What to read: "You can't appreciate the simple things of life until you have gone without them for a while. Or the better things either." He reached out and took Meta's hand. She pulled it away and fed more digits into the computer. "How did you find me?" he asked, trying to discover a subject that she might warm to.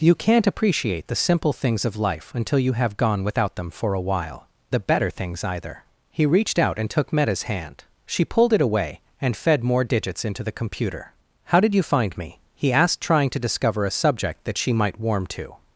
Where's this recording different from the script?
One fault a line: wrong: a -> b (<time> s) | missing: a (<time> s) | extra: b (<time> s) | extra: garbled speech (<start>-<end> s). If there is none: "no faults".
missing: Or (4.5 s)